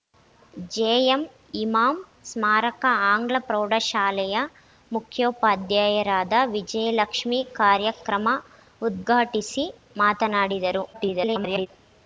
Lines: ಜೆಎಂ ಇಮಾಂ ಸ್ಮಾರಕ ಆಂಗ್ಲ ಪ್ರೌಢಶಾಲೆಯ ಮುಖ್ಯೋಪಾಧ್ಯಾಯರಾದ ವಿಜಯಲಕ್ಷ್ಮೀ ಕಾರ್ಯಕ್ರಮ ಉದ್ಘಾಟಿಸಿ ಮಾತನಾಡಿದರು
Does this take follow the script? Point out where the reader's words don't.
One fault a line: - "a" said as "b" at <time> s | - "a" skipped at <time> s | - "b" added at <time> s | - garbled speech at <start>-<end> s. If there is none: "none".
- garbled speech at 10.9-11.7 s